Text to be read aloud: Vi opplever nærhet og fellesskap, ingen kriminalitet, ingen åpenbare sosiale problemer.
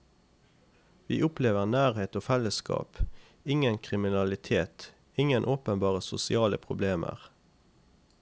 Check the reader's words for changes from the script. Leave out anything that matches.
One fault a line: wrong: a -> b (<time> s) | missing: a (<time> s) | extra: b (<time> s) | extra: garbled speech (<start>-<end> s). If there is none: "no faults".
no faults